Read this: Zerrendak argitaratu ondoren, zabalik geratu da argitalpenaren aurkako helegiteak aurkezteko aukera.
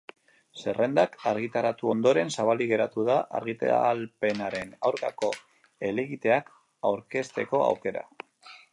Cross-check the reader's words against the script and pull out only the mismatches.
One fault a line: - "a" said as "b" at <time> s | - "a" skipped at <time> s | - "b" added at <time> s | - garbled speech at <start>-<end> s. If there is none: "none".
none